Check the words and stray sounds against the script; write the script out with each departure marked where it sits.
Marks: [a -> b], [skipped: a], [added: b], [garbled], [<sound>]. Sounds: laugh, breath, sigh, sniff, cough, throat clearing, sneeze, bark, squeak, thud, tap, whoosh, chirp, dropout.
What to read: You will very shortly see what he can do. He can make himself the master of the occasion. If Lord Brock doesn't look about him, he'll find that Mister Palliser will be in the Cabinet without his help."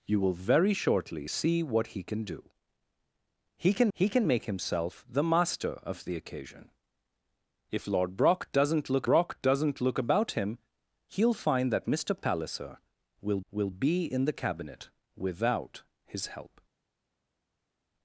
You will very shortly see what he can do. He can [added: he can] make himself the master of the occasion. If Lord Brock doesn't look [added: Brock doesn't look] about him, he'll find that Mister Palliser will [added: will] be in the Cabinet without his help."